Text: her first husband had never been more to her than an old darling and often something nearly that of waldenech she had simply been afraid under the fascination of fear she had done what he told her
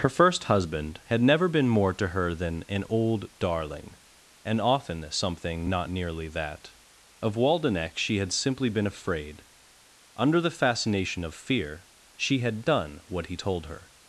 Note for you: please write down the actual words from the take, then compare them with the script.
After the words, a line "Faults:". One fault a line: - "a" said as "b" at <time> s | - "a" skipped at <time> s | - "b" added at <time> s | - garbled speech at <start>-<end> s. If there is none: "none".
her first husband had never been more to her than an old darling and often something not nearly that of waldenech she had simply been afraid under the fascination of fear she had done what he told her
Faults:
- "not" added at 5.7 s